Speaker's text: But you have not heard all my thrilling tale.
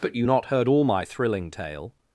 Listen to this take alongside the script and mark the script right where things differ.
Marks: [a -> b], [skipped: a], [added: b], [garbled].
But you [skipped: have] not heard all my thrilling tale.